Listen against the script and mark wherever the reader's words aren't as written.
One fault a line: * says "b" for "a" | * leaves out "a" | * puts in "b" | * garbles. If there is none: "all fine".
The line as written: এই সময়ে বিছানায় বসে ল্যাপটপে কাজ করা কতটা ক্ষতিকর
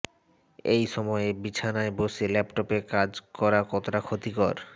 all fine